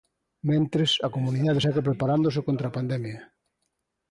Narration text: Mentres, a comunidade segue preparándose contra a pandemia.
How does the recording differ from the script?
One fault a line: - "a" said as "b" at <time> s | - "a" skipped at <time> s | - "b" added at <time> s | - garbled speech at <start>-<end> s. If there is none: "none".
none